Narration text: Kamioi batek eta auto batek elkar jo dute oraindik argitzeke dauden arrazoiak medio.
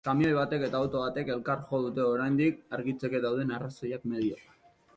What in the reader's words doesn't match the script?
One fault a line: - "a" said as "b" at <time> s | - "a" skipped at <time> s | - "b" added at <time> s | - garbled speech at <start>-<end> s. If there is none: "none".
none